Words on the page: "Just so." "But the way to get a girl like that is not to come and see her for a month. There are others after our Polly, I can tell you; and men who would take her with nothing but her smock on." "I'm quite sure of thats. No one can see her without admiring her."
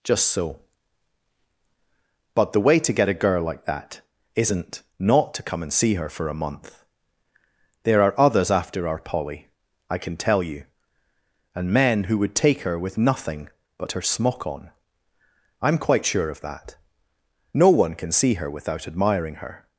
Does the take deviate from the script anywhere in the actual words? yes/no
yes